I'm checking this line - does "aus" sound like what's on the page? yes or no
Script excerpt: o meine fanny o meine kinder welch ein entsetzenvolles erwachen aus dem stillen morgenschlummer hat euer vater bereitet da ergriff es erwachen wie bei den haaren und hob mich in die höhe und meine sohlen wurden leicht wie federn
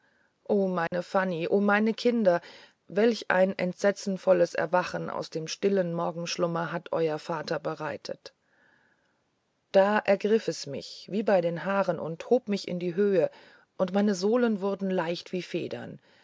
yes